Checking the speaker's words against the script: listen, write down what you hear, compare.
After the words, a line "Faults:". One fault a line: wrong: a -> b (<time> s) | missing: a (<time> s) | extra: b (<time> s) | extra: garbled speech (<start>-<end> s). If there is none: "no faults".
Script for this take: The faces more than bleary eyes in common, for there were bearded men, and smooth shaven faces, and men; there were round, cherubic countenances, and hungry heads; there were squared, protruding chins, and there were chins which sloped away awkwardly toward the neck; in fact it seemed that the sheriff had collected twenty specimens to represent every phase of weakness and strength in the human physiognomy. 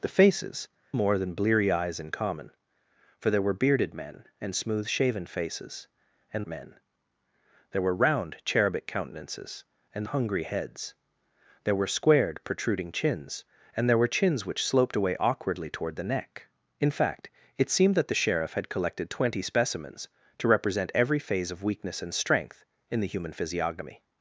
The faces more than bleary eyes in common, for there were bearded men, and smooth shaven faces, and men; there were round, cherubic countenances, and hungry heads; there were squared, protruding chins, and there were chins which sloped away awkwardly toward the neck; in fact it seemed that the sheriff had collected twenty specimens to represent every phase of weakness and strength in the human physiognomy.
Faults:
no faults